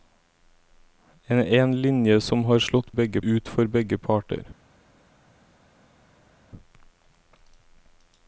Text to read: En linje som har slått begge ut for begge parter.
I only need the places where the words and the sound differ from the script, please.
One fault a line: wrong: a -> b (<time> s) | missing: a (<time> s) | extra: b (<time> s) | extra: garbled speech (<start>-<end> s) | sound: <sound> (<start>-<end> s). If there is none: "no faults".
no faults